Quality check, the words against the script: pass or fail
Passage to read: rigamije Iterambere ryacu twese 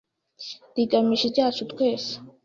fail